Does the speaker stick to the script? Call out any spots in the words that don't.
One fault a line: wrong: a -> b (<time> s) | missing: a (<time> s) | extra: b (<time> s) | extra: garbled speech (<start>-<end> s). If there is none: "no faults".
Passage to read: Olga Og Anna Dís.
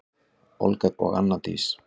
no faults